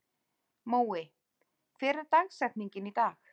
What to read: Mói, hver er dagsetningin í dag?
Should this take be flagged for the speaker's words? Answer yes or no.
no